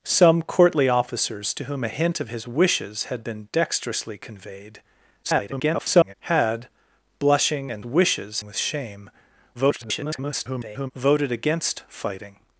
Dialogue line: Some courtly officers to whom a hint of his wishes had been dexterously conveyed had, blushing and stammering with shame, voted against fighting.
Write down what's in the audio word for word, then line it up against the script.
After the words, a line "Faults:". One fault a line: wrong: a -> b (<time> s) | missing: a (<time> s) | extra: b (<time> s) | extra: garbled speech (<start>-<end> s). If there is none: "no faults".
Some courtly officers to whom a hint of his wishes had been dexterously conveyed [garbled] had, blushing and wishes with shame, [garbled] voted against fighting.
Faults:
extra: garbled speech (5.2-6.1 s)
wrong: stammering -> wishes (7.8 s)
extra: garbled speech (9.5-10.9 s)